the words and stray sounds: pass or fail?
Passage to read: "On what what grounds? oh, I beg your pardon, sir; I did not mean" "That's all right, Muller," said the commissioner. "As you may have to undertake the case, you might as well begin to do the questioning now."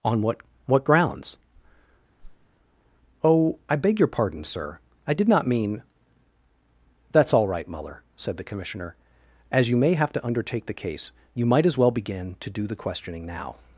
fail